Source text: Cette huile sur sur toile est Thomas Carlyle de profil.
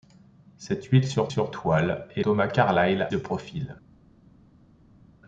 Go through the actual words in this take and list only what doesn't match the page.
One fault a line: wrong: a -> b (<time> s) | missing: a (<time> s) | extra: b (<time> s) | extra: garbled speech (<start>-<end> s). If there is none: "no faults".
no faults